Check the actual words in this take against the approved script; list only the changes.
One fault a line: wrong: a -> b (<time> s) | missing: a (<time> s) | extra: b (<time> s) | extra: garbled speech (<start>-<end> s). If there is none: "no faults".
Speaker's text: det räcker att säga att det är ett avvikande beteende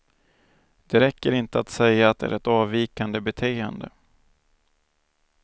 extra: inte (1.3 s)